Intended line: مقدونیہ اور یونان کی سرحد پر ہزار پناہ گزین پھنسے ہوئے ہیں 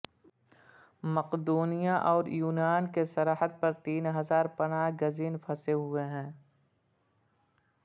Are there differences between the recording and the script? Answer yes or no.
yes